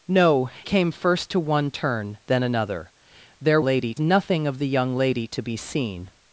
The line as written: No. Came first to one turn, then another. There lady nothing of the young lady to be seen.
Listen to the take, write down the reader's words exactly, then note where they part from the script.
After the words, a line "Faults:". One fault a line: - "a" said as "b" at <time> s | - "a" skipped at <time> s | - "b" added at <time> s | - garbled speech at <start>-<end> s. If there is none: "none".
No. Came first to one turn, then another. There lady nothing of the young lady to be seen.
Faults:
none